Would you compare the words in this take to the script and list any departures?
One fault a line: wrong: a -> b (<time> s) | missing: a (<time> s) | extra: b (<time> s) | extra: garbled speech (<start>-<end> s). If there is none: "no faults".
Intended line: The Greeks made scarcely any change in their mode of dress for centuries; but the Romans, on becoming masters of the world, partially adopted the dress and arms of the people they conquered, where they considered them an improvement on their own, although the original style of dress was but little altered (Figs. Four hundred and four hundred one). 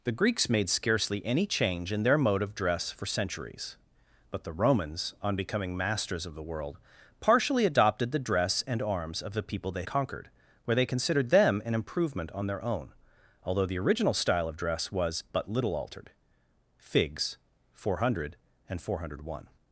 no faults